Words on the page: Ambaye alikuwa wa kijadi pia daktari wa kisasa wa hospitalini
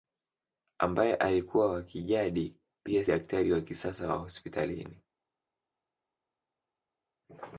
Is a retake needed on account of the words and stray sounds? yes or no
no